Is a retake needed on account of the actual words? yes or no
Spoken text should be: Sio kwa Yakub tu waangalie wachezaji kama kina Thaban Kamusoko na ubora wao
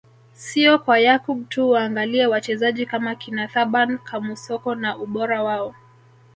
no